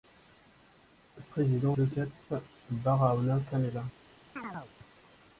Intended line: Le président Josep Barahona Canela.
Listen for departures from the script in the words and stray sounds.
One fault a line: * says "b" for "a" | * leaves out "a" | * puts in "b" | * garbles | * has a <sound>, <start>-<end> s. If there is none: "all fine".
* has a chirp, 4.4-4.7 s